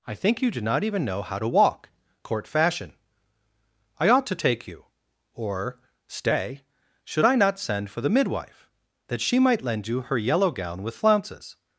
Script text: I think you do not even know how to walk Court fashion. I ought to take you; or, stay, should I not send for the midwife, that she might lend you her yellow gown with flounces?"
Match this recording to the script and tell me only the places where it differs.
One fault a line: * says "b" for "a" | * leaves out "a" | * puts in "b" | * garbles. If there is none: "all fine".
all fine